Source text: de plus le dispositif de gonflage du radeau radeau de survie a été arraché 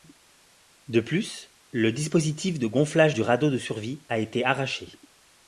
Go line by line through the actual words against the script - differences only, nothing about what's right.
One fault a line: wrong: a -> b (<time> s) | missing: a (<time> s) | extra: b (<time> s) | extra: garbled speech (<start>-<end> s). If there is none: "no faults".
missing: radeau (3.5 s)